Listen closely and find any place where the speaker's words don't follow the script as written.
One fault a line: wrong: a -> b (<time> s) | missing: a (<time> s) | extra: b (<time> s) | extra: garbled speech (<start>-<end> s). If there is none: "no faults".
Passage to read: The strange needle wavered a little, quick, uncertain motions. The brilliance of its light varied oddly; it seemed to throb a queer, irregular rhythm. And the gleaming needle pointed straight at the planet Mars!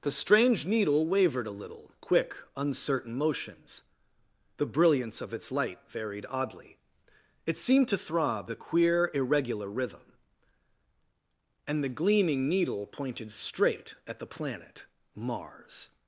no faults